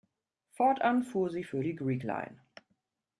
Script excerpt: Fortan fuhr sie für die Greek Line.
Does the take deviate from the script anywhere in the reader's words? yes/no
no